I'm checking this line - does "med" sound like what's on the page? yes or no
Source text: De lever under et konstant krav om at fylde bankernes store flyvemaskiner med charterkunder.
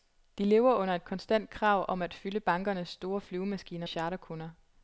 no